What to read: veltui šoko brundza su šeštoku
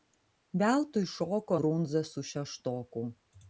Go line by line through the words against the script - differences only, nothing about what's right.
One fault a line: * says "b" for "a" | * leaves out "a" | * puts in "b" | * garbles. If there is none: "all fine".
all fine